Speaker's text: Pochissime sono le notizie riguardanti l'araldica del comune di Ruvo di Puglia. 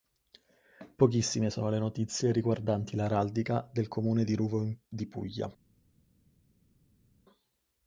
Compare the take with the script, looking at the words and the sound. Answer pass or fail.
pass